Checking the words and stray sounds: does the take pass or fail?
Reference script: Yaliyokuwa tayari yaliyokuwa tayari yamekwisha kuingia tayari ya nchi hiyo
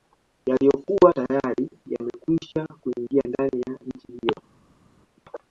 fail